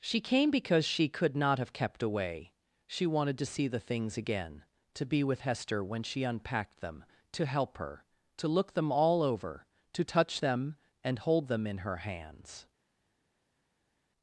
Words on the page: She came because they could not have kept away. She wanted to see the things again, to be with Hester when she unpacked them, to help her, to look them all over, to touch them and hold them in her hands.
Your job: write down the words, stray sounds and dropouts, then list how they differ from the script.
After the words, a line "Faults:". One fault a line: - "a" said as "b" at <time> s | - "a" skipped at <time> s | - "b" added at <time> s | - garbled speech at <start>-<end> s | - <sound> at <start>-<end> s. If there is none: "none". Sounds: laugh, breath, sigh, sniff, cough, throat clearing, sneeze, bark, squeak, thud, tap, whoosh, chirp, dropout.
She came because she could not have kept away. She wanted to see the things again, to be with Hester when she unpacked them, to help her, to look them all over, to touch them and hold them in her hands.
Faults:
- "they" said as "she" at 0.8 s